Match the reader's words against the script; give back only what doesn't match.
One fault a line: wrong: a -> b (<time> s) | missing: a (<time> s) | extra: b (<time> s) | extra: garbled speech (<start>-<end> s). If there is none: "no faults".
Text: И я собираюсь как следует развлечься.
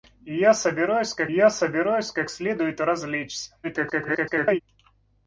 extra: я собираюсь как (1.3 s)
extra: garbled speech (3.6-4.6 s)